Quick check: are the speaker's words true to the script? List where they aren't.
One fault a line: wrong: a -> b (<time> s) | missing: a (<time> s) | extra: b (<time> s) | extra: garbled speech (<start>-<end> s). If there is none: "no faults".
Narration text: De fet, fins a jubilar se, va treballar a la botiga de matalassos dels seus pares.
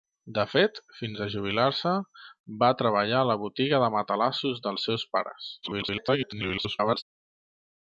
extra: garbled speech (5.6-7.0 s)